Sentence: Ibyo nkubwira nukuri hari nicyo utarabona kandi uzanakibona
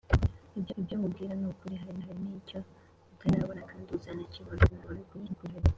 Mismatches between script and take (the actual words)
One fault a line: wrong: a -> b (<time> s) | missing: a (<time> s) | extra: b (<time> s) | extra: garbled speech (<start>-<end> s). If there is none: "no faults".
extra: ibyo (0.8 s)
extra: hari (2.0 s)
extra: garbled speech (4.7-5.6 s)